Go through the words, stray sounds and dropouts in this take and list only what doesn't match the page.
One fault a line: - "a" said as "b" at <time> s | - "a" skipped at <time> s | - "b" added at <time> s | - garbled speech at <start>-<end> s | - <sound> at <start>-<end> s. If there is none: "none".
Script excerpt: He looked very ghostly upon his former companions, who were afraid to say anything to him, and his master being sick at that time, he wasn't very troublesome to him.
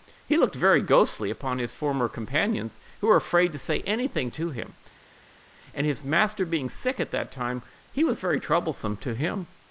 - "wasn't" said as "was" at 8.0 s